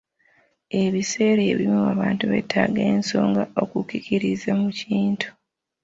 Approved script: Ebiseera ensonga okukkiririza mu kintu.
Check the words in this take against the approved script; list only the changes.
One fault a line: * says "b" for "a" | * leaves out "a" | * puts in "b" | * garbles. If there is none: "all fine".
* puts in "ebimu abantu beetaaga"